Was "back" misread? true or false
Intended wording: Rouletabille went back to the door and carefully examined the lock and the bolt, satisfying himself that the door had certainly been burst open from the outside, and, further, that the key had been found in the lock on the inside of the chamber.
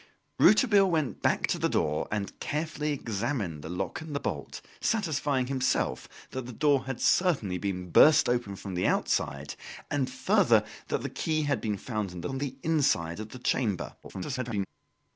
false